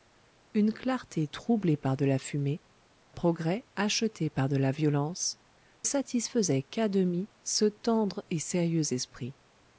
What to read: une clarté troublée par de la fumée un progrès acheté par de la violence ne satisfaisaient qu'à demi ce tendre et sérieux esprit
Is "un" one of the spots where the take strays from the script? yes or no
yes